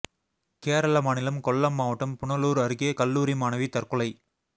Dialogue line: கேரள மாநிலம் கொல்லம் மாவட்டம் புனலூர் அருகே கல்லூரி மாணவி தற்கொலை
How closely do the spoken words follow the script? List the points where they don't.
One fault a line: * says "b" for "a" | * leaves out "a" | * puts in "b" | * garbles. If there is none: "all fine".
all fine